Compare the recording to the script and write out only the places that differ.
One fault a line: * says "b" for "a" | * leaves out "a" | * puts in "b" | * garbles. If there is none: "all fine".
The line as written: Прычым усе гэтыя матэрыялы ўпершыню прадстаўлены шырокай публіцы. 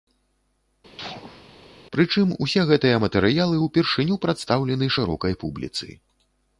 all fine